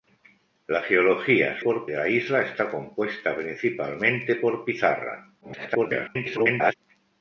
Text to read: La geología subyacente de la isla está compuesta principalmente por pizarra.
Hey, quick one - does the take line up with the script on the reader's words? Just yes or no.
no